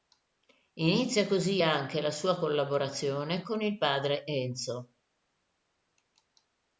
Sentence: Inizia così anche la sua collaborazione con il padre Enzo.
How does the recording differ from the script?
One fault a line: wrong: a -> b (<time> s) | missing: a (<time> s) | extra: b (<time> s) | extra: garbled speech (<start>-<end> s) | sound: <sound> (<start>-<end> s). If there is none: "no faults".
no faults